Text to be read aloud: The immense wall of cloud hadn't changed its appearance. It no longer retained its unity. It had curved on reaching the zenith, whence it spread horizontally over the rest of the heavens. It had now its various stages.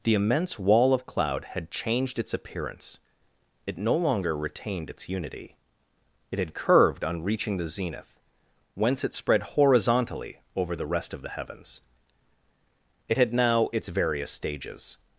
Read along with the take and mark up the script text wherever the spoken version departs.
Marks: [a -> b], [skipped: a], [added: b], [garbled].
The immense wall of cloud [hadn't -> had] changed its appearance. It no longer retained its unity. It had curved on reaching the zenith, whence it spread horizontally over the rest of the heavens. It had now its various stages.